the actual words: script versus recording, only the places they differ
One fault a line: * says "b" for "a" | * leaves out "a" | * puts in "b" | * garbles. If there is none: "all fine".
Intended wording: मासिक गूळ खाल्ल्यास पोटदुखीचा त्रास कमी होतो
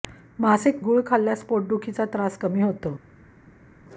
all fine